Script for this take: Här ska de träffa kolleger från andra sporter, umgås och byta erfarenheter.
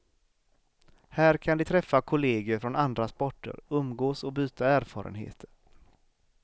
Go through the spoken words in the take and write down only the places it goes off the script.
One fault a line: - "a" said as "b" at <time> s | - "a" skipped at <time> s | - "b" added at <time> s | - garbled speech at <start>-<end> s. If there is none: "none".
- "ska" said as "kan" at 1.4 s